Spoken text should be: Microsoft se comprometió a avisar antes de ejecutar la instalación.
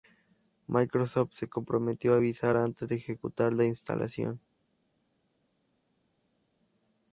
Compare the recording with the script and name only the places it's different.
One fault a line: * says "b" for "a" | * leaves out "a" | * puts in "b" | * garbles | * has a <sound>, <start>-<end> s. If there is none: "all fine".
all fine